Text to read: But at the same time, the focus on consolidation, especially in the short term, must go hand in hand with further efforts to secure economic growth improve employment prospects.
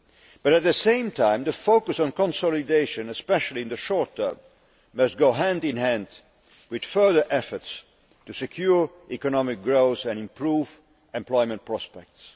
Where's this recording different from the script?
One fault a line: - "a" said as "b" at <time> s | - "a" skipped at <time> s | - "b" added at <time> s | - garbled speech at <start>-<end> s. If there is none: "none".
- "and" added at 10.1 s